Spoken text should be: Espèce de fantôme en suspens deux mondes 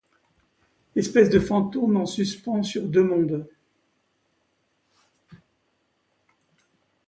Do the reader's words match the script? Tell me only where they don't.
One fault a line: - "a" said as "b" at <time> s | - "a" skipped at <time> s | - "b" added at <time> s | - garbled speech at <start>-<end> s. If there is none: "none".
- "sur" added at 2.6 s